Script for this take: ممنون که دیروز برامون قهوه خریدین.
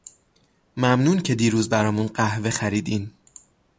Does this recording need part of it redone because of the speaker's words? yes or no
no